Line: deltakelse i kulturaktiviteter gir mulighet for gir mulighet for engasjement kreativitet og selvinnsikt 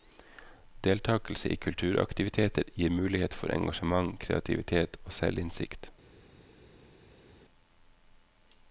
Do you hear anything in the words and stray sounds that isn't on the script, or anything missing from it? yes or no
yes